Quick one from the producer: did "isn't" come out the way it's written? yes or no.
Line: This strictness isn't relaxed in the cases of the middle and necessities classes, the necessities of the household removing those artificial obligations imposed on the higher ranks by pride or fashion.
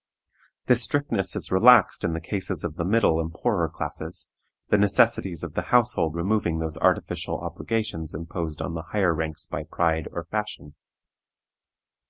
no